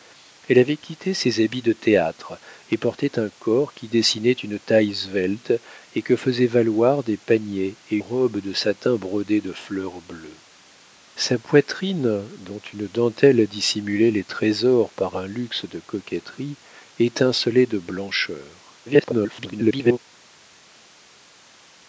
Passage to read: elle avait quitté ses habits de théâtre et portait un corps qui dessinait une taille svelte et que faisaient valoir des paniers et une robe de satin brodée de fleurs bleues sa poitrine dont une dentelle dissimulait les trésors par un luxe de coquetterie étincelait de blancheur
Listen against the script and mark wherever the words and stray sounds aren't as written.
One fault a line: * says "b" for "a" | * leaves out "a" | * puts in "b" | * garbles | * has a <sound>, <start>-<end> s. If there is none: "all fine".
* leaves out "une"
* garbles